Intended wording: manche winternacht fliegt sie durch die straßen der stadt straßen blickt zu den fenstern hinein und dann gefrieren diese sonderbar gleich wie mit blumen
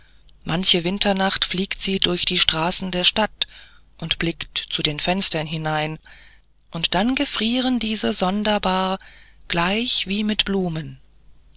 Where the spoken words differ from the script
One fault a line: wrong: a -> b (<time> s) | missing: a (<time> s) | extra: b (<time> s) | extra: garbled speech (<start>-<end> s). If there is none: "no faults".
wrong: straßen -> und (4.0 s)